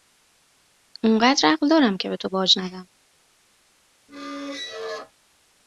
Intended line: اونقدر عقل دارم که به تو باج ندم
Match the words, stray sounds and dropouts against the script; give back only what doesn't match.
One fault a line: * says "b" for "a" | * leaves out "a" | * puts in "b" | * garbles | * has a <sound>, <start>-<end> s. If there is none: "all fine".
* has a squeak, 4.1-5.1 s